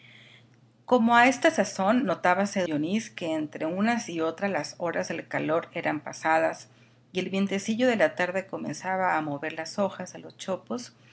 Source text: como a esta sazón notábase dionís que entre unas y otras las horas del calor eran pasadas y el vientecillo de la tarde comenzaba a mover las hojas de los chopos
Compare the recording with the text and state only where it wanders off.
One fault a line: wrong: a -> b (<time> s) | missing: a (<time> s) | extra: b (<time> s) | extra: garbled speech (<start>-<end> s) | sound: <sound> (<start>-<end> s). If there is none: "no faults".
no faults